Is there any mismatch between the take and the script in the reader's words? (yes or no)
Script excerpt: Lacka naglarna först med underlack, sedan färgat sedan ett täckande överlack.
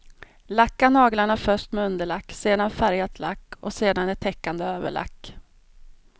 yes